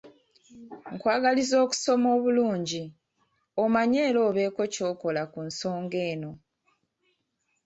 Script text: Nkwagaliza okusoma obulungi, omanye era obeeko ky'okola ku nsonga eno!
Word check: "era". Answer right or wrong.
right